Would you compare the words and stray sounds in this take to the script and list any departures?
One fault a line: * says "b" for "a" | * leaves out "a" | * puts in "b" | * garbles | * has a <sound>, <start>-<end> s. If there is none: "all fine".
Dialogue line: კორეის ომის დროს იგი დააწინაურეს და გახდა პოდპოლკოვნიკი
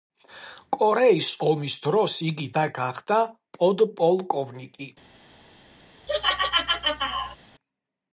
* leaves out "დააწინაურეს"
* has a laugh, 6.1-7.4 s